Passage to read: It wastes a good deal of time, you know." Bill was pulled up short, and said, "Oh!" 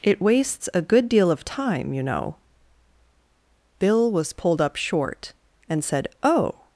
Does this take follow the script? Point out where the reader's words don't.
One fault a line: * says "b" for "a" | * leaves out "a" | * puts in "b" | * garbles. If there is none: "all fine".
all fine